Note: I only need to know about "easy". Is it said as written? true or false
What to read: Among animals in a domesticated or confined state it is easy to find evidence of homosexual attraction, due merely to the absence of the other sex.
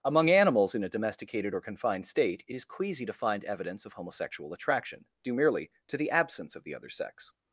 false